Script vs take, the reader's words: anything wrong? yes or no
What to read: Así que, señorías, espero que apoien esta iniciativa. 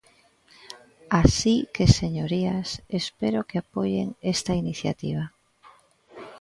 no